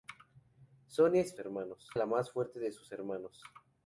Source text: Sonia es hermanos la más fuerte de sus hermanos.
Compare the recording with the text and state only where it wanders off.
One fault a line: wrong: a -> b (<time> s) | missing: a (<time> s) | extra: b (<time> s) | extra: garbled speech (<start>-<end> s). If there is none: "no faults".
no faults